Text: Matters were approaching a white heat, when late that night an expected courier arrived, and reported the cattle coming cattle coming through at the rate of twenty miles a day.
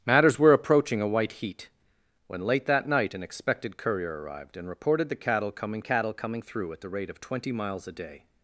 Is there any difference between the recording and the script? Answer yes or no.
no